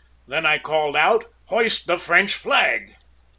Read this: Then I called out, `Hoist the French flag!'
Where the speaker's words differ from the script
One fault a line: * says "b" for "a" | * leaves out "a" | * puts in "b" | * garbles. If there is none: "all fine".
all fine